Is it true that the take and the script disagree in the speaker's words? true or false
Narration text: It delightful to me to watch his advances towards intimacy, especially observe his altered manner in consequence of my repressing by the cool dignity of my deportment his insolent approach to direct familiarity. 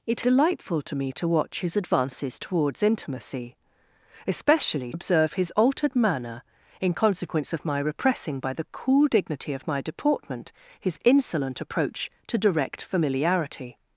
false